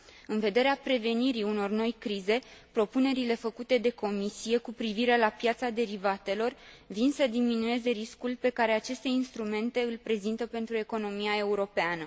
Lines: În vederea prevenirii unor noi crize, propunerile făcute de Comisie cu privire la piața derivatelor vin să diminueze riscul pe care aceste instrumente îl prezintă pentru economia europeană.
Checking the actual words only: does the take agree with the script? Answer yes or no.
yes